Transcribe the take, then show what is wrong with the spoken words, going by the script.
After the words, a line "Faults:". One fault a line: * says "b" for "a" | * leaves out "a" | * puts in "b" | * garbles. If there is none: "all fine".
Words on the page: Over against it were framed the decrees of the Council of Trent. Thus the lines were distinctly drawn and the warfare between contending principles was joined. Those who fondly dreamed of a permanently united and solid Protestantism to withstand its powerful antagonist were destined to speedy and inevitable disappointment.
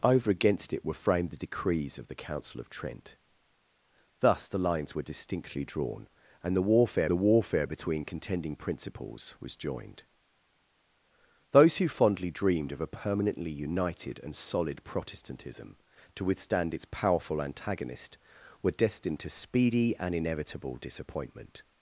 Over against it were framed the decrees of the Council of Trent. Thus the lines were distinctly drawn and the warfare the warfare between contending principles was joined. Those who fondly dreamed of a permanently united and solid Protestantism to withstand its powerful antagonist were destined to speedy and inevitable disappointment.
Faults:
* puts in "the warfare"